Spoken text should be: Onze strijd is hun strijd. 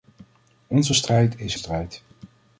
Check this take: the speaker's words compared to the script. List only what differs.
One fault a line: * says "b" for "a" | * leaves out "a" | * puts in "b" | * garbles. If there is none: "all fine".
* leaves out "hun"